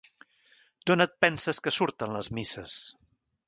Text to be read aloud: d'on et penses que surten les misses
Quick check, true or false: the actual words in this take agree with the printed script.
true